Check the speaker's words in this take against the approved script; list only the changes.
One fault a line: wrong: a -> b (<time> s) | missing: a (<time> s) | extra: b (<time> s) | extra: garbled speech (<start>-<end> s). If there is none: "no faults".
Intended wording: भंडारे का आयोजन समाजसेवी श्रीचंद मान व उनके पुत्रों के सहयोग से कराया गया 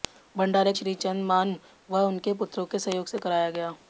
missing: का आयोजन समाजसेवी (0.7 s)